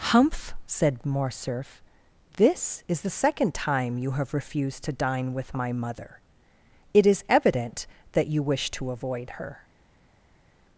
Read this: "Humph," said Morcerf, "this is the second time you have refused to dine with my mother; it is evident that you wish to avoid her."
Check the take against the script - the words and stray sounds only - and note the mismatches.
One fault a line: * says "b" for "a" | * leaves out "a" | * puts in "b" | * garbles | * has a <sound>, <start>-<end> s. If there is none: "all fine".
all fine